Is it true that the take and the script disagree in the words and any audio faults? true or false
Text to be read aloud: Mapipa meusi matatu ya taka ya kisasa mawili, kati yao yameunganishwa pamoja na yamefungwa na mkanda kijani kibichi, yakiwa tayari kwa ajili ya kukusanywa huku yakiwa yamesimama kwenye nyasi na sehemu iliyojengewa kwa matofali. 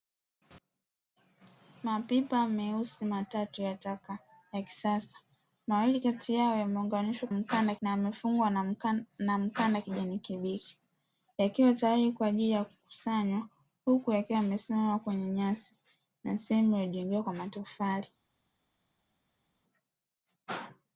true